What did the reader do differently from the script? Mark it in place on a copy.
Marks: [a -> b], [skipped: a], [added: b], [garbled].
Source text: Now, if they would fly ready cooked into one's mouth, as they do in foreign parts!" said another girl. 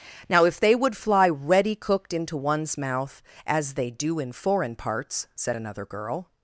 Now, if they would fly ready cooked into one's mouth, as they do in foreign parts!" said another girl.